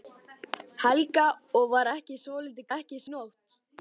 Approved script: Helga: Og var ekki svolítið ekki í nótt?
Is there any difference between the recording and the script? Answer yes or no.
no